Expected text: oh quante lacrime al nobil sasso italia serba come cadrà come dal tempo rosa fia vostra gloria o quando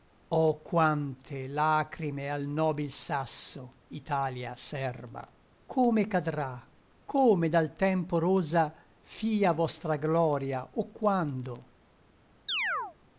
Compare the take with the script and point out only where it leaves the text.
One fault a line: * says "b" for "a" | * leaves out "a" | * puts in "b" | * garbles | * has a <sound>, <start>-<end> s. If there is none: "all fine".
* has a chirp, 12.5-13.0 s